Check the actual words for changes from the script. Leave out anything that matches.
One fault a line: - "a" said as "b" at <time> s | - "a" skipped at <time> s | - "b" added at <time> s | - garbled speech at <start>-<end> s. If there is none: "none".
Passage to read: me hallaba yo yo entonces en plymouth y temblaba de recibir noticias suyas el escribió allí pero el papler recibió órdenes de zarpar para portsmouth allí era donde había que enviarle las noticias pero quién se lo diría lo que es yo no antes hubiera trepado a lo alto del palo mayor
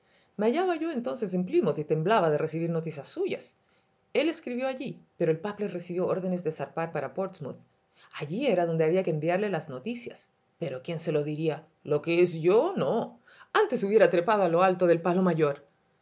- "yo" skipped at 0.9 s